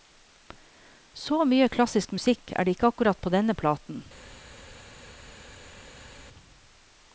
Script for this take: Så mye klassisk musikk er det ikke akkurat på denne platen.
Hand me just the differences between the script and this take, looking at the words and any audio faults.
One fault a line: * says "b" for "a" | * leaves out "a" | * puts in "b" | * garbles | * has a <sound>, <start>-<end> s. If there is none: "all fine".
all fine